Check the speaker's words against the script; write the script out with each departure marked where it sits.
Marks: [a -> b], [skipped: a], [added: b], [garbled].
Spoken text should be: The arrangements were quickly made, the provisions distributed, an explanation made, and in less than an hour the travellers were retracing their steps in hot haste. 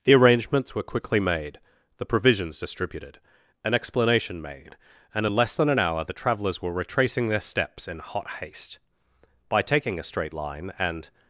The arrangements were quickly made, the provisions distributed, an explanation made, and in less than an hour the travellers were retracing their steps in hot haste. [added: By taking a straight line and]